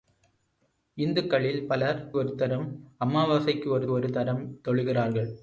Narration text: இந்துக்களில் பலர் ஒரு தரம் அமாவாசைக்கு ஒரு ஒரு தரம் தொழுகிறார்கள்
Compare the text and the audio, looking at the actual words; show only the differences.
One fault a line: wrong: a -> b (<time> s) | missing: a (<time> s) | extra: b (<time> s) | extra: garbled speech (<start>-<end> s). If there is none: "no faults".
no faults